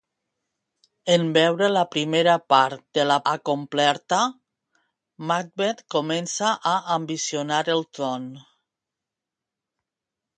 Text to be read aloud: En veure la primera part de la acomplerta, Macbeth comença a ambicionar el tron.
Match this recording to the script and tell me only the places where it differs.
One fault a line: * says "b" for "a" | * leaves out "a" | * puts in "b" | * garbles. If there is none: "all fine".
all fine